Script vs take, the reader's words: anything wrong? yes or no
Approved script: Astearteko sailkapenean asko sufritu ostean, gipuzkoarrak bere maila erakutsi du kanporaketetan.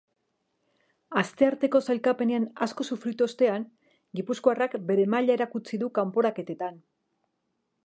no